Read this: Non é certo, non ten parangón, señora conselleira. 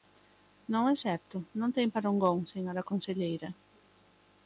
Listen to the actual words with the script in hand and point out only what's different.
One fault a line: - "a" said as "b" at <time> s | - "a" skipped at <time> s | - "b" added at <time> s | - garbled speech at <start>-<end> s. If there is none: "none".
none